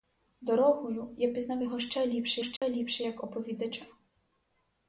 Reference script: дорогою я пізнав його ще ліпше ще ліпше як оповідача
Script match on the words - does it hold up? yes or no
yes